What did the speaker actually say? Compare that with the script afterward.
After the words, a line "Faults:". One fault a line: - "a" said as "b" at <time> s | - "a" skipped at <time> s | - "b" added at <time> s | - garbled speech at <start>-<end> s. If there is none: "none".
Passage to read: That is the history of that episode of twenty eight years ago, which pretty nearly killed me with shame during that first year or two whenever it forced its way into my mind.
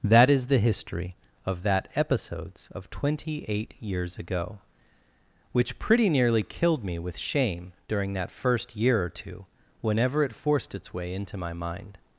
That is the history of that episodes of twenty eight years ago, which pretty nearly killed me with shame during that first year or two whenever it forced its way into my mind.
Faults:
- "episode" said as "episodes" at 1.9 s